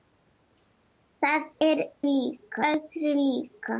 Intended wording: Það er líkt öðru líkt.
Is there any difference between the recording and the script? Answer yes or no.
no